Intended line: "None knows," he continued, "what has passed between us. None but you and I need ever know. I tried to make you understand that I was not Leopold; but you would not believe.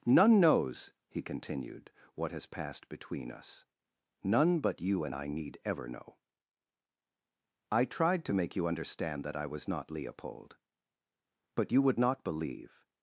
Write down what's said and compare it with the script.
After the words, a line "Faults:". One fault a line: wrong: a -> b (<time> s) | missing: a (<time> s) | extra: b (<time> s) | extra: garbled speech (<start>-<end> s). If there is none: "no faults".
"None knows," he continued, "what has passed between us. None but you and I need ever know. I tried to make you understand that I was not Leopold; but you would not believe.
Faults:
no faults